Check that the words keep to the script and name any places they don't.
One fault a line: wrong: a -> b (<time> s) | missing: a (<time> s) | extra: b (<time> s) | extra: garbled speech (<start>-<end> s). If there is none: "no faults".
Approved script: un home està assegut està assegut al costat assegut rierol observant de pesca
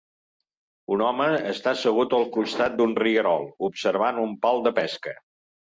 missing: està assegut (2.2 s)
wrong: assegut -> d'un (2.8 s)
extra: un pal (4.3 s)